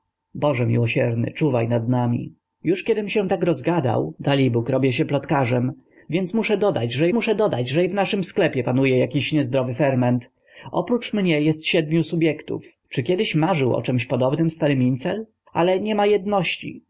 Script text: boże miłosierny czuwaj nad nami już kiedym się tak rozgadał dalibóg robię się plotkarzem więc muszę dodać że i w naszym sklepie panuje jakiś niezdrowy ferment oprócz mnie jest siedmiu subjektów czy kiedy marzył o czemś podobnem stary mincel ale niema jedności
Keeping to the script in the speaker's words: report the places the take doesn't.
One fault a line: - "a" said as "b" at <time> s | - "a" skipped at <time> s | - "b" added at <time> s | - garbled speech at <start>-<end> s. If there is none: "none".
- "muszę dodać że" added at 7.1 s